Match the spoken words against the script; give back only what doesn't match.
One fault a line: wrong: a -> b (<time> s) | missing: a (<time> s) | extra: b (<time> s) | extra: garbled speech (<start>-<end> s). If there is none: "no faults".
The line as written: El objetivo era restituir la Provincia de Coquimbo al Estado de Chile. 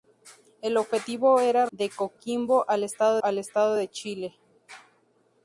wrong: restituir la Provincia de Coquimbo -> de Coquimbo al Estado (1.7 s)